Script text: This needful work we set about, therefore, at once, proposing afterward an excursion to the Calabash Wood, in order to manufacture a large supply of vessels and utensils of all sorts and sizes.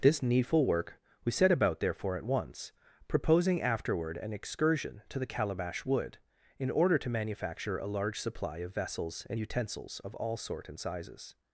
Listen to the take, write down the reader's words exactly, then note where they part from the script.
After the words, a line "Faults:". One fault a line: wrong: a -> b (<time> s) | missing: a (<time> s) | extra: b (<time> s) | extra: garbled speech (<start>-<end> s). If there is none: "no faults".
This needful work we set about, therefore, at once, proposing afterward an excursion to the Calabash Wood, in order to manufacture a large supply of vessels and utensils of all sort and sizes.
Faults:
wrong: sorts -> sort (10.4 s)